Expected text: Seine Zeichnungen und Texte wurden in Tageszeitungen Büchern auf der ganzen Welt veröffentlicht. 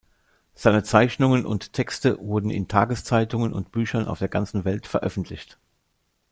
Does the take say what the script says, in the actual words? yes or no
no